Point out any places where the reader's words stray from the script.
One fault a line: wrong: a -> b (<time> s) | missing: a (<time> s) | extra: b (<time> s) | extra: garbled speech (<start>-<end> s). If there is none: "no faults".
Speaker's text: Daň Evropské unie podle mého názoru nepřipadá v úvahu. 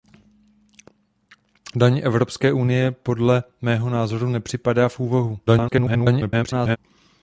extra: garbled speech (5.5-6.8 s)